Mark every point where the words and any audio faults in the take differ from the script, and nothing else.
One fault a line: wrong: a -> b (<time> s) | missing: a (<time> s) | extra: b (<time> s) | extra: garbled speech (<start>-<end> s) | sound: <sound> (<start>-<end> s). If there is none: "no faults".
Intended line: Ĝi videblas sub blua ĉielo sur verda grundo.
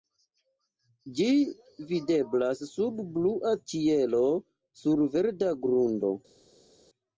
no faults